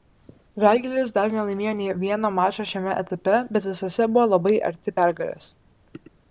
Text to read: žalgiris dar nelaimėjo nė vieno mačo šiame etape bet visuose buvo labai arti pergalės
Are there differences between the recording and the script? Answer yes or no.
no